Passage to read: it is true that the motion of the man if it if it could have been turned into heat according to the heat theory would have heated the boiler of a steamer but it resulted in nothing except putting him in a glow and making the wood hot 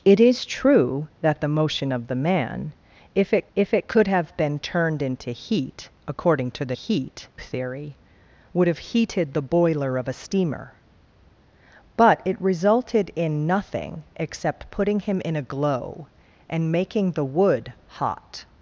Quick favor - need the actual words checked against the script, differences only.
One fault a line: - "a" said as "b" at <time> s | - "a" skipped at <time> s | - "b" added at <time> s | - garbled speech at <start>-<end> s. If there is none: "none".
none